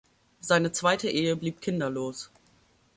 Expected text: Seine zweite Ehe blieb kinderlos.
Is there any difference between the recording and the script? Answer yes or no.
no